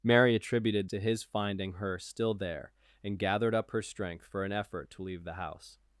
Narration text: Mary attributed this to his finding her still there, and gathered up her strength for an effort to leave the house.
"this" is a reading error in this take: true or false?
true